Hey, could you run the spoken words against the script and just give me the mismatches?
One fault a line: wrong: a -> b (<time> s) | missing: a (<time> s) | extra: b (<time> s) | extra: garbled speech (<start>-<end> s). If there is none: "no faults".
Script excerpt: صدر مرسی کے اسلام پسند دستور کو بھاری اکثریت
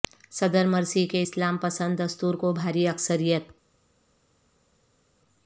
no faults